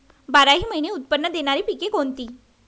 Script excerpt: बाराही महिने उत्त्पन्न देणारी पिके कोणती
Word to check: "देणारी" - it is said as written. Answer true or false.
true